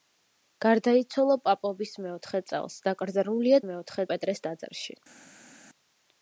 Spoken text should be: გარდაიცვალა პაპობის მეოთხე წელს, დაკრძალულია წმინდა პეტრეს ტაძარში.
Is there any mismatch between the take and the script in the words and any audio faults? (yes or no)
yes